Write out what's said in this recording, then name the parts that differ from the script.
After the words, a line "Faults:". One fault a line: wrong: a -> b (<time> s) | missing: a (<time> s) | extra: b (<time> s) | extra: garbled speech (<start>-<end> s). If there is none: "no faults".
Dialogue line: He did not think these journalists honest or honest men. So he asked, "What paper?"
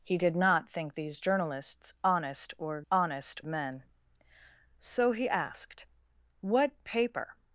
He did not think these journalists honest or honest men. So he asked, "What paper?"
Faults:
no faults